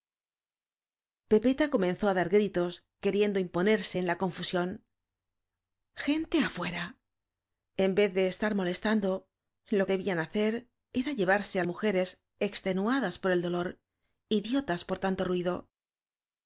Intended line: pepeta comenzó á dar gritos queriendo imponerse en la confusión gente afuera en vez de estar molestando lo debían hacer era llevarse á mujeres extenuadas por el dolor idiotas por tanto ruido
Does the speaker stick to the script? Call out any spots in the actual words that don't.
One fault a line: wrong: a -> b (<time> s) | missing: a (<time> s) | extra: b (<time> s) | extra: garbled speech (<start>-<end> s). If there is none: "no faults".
no faults